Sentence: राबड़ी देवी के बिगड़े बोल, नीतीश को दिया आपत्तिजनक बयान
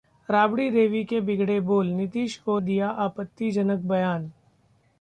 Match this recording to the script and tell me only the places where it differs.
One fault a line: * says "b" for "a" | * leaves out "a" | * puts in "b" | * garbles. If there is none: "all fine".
all fine